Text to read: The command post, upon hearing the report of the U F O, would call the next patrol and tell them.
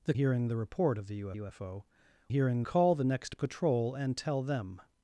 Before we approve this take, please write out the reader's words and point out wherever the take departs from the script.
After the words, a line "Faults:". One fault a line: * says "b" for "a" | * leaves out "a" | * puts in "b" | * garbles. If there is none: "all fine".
The hearing the report of the U U F O, hearing call the next patrol and tell them.
Faults:
* leaves out "command post upon"
* puts in "U"
* says "hearing" for "would"